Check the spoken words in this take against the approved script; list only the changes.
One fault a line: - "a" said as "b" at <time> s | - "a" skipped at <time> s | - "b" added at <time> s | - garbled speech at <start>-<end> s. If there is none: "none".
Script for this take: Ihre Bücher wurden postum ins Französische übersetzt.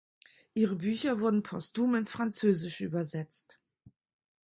none